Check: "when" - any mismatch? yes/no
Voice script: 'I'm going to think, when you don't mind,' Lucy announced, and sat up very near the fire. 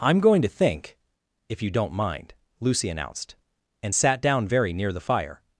yes